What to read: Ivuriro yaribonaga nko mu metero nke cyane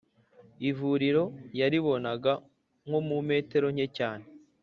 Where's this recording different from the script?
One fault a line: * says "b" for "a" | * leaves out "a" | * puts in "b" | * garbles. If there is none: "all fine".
all fine